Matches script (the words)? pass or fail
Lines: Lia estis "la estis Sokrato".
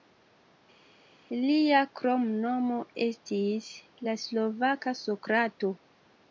fail